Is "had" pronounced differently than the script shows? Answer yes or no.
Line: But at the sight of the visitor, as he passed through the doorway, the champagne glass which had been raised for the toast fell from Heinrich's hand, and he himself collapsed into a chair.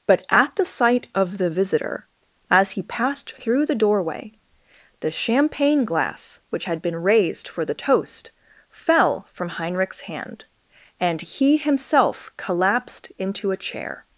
no